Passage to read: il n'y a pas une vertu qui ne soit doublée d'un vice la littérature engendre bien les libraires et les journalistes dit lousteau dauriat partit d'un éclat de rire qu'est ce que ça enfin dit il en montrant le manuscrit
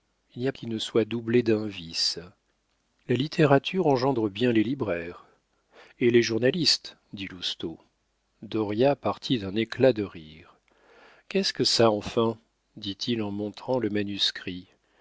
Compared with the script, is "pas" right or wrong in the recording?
wrong